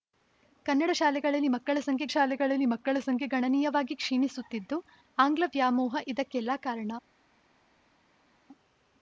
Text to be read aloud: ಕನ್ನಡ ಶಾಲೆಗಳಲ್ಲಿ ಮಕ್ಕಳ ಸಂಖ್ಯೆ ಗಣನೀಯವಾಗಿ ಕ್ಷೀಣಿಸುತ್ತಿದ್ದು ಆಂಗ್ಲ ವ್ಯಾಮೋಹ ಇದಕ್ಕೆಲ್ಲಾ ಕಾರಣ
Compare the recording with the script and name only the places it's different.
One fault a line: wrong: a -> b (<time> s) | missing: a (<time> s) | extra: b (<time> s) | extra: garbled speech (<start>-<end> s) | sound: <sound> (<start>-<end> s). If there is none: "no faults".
extra: ಶಾಲೆಗಳಲ್ಲಿ ಮಕ್ಕಳ ಸಂಖ್ಯೆ (2.1 s)